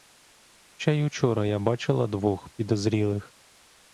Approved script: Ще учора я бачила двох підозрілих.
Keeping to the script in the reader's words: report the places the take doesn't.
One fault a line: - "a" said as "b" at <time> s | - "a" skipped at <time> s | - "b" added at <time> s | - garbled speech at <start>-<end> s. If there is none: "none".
- "й" added at 0.9 s